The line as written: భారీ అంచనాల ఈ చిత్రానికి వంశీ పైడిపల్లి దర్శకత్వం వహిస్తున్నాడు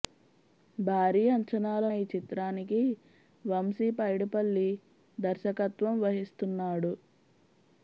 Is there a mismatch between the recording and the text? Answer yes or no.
no